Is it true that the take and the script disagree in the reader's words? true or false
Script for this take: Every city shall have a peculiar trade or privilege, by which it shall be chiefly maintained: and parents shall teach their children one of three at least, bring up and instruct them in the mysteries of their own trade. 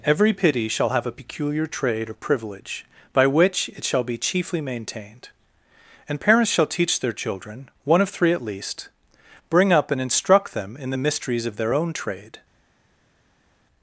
true